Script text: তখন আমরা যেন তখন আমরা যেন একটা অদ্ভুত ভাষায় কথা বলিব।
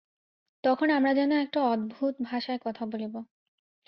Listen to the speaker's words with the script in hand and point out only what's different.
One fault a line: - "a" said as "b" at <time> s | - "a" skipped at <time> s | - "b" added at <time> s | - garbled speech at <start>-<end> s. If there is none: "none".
- "তখন আমরা যেন" skipped at 1.3 s